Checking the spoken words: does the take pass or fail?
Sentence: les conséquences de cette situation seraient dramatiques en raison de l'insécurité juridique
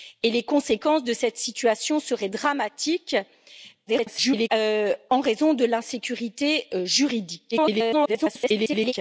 fail